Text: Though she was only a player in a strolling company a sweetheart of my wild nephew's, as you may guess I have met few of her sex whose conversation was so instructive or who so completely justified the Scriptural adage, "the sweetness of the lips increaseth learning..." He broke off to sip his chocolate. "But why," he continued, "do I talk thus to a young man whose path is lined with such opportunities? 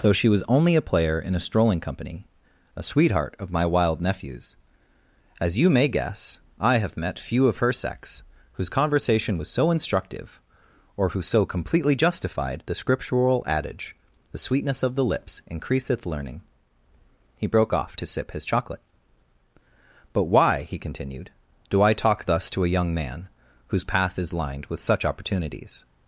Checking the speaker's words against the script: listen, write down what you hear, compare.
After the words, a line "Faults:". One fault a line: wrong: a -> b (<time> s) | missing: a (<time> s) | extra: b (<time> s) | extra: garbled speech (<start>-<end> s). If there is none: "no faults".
Though she was only a player in a strolling company a sweetheart of my wild nephew's, as you may guess I have met few of her sex whose conversation was so instructive or who so completely justified the Scriptural adage, "the sweetness of the lips increaseth learning..." He broke off to sip his chocolate. "But why," he continued, "do I talk thus to a young man whose path is lined with such opportunities?
Faults:
no faults